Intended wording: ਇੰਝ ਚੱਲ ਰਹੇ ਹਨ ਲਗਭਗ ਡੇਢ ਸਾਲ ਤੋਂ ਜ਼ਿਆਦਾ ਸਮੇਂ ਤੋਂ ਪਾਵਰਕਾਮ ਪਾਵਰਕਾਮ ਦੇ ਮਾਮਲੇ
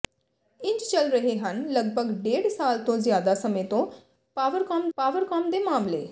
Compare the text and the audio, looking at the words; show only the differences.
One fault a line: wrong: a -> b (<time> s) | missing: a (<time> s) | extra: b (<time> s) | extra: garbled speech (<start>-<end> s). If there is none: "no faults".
no faults